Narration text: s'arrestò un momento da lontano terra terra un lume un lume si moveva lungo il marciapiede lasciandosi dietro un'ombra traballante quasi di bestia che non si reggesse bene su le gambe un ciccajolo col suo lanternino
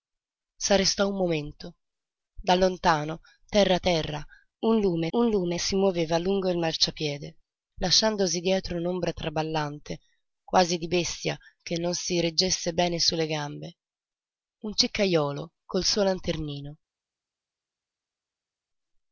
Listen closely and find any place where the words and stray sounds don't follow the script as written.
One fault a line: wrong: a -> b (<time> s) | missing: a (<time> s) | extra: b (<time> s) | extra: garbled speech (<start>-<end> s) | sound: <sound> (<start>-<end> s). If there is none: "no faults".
no faults